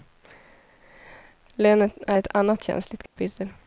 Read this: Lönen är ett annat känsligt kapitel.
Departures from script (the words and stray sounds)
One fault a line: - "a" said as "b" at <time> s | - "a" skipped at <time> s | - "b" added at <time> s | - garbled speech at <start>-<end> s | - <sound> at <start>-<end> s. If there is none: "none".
- dropout at 3.1-3.2 s